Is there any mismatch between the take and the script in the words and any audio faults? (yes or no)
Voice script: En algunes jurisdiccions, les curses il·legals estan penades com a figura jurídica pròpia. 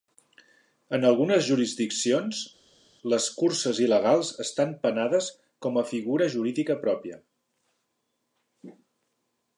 no